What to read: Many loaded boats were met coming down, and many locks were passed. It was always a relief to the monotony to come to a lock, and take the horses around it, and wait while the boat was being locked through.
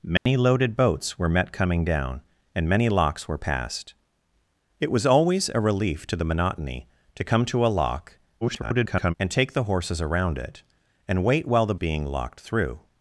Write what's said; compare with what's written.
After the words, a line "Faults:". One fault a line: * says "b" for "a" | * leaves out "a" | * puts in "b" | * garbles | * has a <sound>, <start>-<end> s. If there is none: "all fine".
Many loaded boats were met coming down, and many locks were passed. It was always a relief to the monotony to come to a lock, [garbled] and take the horses around it, and wait while the being locked through.
Faults:
* has a dropout, 0.2-0.3 s
* garbles
* leaves out "boat was"